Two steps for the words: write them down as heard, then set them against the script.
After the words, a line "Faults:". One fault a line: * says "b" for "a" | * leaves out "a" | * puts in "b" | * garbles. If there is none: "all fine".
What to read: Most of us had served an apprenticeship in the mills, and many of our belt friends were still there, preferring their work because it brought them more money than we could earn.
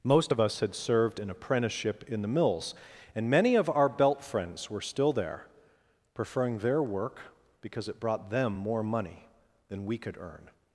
Most of us had served an apprenticeship in the mills, and many of our belt friends were still there, preferring their work because it brought them more money than we could earn.
Faults:
all fine